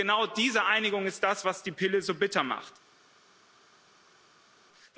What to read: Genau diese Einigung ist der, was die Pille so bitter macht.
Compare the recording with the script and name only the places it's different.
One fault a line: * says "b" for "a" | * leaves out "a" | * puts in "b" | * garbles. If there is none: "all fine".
* says "das" for "der"